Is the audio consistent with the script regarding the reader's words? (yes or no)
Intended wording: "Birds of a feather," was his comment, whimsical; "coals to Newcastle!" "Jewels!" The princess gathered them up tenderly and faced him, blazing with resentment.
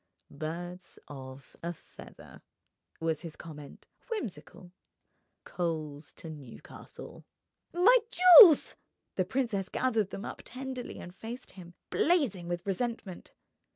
no